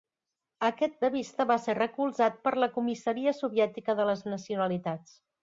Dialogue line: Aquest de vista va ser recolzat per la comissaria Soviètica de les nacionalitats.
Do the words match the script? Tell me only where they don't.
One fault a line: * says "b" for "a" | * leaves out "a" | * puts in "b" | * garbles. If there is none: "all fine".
all fine